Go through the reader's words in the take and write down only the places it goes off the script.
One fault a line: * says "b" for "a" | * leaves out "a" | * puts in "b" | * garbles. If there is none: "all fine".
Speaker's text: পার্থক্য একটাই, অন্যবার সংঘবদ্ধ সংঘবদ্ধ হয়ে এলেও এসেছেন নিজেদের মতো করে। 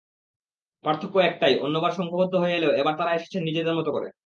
* leaves out "সংঘবদ্ধ"
* puts in "এবার তাঁরা"